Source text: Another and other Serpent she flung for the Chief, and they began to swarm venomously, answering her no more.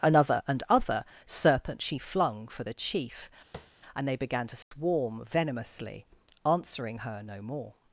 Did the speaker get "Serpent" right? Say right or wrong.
right